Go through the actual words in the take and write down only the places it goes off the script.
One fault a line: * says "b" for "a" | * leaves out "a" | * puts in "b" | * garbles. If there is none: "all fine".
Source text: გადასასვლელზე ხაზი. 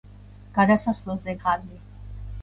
all fine